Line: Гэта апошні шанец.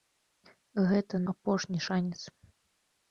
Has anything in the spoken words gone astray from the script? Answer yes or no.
no